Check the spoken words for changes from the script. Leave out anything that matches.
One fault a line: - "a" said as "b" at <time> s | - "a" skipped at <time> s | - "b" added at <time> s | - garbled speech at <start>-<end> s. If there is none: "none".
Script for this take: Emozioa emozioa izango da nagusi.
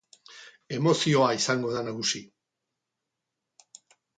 - "emozioa" skipped at 1.3 s